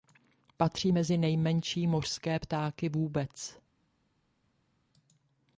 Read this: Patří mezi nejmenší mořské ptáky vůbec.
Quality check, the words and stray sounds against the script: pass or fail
pass